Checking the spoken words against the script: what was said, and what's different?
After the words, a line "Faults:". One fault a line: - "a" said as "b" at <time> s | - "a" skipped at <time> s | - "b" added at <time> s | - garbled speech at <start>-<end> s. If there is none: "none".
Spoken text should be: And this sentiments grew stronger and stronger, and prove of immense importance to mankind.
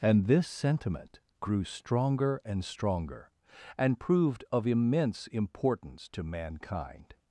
And this sentiment grew stronger and stronger, and proved of immense importance to mankind.
Faults:
- "sentiments" said as "sentiment" at 0.5 s
- "prove" said as "proved" at 4.0 s